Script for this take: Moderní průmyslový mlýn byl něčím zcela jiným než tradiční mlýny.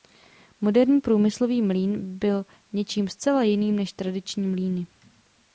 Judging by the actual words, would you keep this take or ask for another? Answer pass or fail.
pass